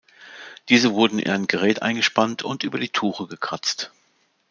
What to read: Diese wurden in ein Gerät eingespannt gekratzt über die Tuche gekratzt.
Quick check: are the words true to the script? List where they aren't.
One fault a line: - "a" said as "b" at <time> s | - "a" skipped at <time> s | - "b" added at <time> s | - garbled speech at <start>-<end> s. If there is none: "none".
- "gekratzt" said as "und" at 2.4 s